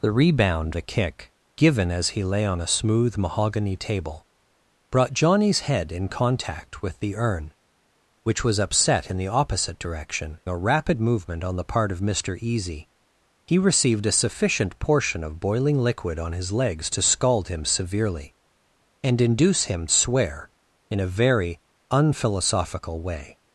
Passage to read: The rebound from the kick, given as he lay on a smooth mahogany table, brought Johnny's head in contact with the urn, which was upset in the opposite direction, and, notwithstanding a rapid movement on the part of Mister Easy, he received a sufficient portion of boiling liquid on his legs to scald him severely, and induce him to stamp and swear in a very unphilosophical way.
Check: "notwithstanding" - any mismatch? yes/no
yes